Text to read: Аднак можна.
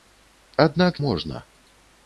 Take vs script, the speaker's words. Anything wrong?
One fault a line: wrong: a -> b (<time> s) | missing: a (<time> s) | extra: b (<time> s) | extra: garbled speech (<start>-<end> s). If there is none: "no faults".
no faults